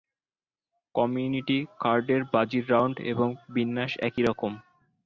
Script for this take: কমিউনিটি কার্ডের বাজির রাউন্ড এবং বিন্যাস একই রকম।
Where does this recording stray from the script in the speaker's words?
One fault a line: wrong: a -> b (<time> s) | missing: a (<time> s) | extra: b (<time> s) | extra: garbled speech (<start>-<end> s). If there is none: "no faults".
no faults